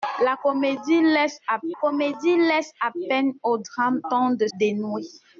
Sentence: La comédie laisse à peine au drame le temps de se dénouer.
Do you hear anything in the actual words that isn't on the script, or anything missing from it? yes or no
yes